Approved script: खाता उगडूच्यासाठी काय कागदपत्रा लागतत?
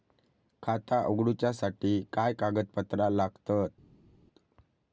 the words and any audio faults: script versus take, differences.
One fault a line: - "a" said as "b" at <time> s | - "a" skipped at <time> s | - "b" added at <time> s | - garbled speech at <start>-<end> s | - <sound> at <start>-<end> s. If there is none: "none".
none